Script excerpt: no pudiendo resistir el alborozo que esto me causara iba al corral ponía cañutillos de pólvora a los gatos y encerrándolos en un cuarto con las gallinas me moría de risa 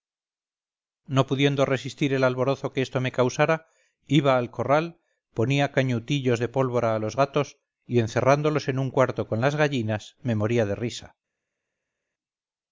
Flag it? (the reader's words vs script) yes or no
no